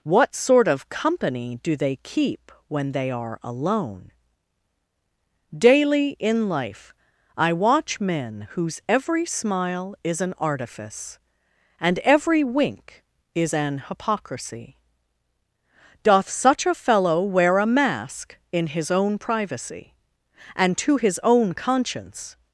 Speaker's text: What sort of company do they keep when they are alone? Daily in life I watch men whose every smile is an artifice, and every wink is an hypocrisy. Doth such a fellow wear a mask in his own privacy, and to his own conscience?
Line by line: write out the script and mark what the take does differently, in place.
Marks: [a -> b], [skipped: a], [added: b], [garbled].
What sort of company do they keep when they are alone? Daily in life I watch men whose every smile is an artifice, and every wink is an hypocrisy. Doth such a fellow wear a mask in his own privacy, and to his own conscience?